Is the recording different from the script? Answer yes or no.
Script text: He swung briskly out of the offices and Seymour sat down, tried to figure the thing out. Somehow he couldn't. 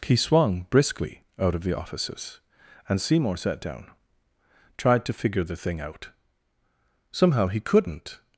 no